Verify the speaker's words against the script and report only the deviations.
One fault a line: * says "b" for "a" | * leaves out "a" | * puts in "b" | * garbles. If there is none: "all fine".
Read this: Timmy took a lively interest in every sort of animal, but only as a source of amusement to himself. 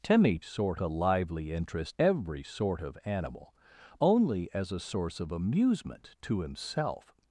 * says "sort" for "took"
* leaves out "in"
* leaves out "but"